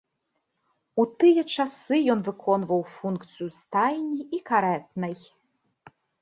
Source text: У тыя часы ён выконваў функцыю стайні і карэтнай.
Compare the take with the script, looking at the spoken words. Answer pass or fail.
pass